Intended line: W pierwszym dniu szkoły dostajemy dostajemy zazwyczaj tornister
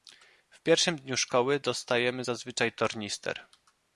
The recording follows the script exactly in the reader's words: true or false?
false